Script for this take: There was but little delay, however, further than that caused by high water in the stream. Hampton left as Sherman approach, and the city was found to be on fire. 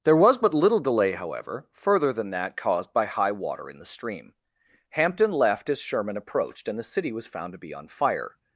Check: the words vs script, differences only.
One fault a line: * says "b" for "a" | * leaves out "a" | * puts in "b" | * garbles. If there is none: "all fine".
* says "approached" for "approach"